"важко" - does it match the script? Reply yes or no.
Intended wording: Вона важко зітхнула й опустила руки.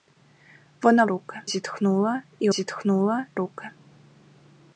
no